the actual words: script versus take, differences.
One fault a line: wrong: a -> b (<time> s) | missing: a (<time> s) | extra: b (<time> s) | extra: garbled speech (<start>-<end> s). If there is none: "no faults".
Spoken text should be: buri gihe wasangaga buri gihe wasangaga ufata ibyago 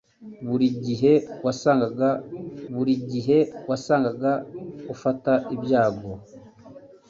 no faults